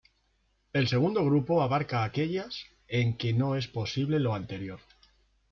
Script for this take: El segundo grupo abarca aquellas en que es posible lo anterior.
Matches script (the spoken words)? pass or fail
fail